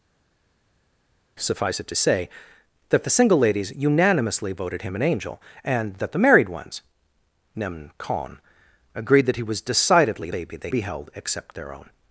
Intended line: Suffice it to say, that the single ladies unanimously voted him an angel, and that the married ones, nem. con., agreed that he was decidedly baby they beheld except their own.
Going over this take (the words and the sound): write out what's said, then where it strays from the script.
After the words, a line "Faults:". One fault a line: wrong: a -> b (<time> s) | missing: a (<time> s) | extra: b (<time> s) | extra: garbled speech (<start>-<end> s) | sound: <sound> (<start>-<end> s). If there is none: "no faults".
Suffice it to say, that the single ladies unanimously voted him an angel, and that the married ones, nem. con., agreed that he was decidedly baby they beheld except their own.
Faults:
no faults